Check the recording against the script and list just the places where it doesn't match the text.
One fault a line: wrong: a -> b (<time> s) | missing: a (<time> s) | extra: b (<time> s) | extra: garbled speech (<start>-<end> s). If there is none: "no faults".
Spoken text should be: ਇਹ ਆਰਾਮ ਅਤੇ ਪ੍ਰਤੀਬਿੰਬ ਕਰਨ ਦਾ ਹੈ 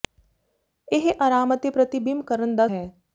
no faults